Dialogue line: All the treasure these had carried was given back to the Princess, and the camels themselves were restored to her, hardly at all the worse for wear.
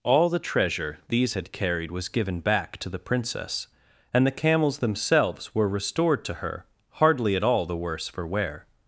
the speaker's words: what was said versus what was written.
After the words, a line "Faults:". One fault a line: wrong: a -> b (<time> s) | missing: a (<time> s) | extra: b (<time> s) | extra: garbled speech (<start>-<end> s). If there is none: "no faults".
All the treasure these had carried was given back to the Princess, and the camels themselves were restored to her, hardly at all the worse for wear.
Faults:
no faults